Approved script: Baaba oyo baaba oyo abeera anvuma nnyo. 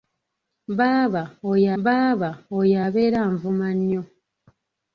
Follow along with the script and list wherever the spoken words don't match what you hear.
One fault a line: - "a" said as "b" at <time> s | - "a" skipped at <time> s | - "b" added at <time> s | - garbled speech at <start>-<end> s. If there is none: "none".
none